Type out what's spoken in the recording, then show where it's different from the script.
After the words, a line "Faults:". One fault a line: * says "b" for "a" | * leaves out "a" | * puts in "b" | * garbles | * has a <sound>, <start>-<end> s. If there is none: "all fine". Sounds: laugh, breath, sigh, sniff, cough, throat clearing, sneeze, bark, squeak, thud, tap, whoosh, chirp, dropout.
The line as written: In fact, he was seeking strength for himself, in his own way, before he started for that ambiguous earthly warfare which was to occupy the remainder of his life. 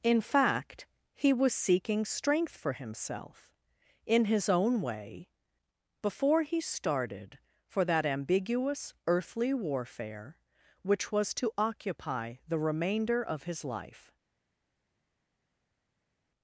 In fact, he was seeking strength for himself, in his own way, before he started for that ambiguous earthly warfare which was to occupy the remainder of his life.
Faults:
all fine